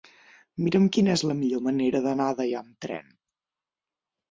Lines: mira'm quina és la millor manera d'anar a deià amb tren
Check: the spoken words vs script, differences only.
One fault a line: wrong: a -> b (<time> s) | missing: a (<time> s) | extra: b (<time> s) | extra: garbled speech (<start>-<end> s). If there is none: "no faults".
no faults